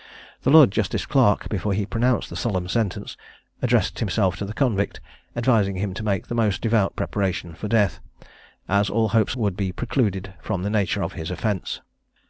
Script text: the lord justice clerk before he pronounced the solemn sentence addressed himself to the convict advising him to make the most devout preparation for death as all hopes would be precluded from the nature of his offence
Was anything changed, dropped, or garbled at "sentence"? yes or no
no